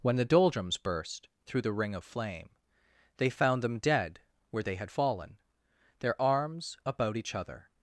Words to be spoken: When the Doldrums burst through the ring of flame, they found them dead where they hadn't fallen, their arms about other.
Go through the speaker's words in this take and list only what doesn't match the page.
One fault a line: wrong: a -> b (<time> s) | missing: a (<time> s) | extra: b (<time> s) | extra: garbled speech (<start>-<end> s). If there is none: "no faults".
wrong: hadn't -> had (4.8 s)
extra: each (7.2 s)